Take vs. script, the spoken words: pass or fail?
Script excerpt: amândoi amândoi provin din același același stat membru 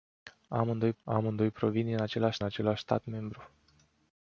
pass